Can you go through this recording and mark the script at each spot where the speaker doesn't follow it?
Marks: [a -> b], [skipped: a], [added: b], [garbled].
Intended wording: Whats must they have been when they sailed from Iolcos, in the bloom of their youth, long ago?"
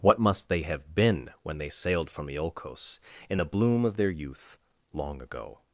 [Whats -> What] must they have been when they sailed from Iolcos, in the bloom of their youth, long ago?"